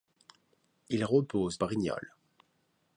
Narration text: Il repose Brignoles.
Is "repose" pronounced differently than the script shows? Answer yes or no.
no